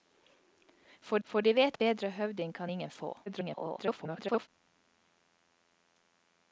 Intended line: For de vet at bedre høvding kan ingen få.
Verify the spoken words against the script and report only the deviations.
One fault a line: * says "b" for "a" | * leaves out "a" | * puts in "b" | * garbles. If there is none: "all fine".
* puts in "for"
* leaves out "at"
* garbles